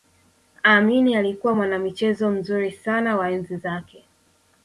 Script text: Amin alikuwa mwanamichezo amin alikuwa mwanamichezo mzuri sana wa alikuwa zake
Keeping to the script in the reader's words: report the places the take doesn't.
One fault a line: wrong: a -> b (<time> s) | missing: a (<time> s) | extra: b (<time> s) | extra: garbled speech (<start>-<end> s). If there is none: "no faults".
missing: amin alikuwa mwanamichezo (2.3 s)
wrong: alikuwa -> enzi (3.3 s)